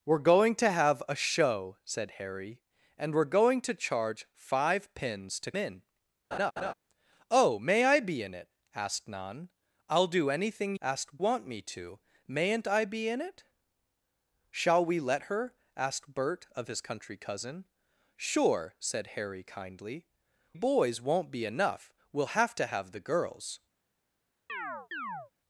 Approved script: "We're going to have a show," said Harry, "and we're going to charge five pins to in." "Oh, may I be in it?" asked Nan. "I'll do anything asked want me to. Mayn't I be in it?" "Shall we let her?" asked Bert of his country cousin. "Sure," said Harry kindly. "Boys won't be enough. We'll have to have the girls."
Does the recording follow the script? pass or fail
pass